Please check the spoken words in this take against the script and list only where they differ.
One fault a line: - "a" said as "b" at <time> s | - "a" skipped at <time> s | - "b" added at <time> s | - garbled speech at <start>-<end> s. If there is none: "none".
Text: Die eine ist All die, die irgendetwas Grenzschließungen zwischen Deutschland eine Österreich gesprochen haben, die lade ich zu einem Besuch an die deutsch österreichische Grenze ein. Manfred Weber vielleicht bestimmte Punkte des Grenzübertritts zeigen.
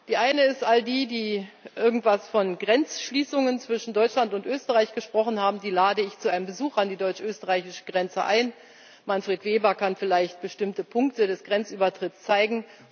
- "von" added at 2.3 s
- "eine" said as "und" at 4.3 s
- "kann" added at 9.8 s